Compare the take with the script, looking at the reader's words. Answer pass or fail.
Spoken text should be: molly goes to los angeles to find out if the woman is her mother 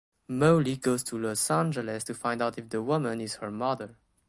pass